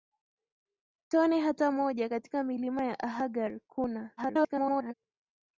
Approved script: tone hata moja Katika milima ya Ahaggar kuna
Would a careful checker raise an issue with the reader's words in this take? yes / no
yes